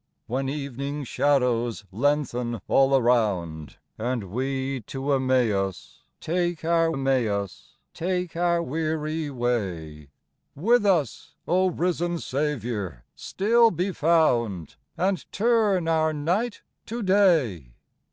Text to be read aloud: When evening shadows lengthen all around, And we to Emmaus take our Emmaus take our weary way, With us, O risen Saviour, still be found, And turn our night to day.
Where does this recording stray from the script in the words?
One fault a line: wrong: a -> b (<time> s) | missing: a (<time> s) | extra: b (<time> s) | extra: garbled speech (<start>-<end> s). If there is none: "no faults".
no faults